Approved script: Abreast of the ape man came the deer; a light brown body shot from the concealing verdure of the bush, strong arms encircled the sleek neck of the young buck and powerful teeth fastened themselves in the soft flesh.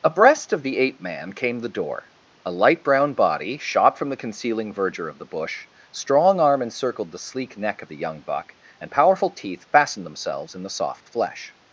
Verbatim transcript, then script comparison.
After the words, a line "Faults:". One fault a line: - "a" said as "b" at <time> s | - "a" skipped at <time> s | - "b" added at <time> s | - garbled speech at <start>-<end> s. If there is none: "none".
Abreast of the ape man came the door; a light brown body shot from the concealing verdure of the bush, strong arm encircled the sleek neck of the young buck and powerful teeth fastened themselves in the soft flesh.
Faults:
- "deer" said as "door" at 1.7 s
- "arms" said as "arm" at 6.4 s